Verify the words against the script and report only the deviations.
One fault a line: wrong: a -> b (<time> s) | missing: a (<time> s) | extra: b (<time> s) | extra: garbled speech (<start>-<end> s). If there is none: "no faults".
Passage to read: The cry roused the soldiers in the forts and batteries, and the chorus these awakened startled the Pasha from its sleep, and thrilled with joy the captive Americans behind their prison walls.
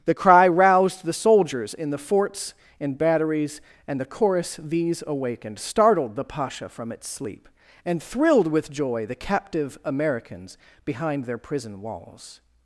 no faults